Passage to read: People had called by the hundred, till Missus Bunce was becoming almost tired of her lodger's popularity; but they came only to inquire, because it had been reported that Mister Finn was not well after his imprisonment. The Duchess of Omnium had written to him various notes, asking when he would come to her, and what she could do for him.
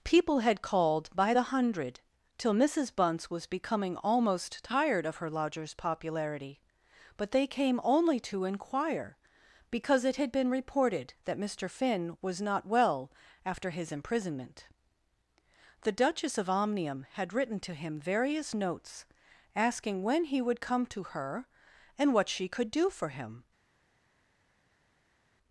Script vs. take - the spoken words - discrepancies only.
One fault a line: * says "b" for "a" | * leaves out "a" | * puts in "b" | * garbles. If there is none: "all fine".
all fine